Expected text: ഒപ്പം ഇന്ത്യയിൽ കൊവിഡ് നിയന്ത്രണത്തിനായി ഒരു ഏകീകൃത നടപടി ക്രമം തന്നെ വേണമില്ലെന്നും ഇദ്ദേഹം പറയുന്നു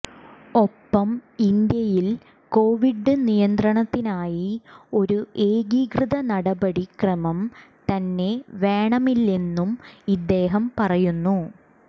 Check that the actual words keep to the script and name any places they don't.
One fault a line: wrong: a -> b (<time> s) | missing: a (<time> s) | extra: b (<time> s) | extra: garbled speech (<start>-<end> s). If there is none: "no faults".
no faults